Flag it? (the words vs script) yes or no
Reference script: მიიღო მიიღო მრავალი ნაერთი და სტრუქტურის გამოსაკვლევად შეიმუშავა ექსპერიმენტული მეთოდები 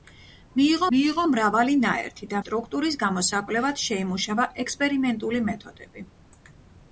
no